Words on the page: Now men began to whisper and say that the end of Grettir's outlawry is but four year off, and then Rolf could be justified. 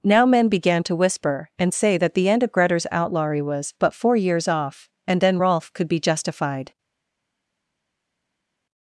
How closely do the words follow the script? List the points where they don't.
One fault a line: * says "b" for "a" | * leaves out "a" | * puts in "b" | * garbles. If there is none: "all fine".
* says "was" for "is"
* says "years" for "year"